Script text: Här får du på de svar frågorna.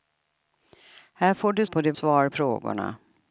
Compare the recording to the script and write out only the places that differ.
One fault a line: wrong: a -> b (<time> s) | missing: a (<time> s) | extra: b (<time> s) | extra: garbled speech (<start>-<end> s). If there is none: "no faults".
no faults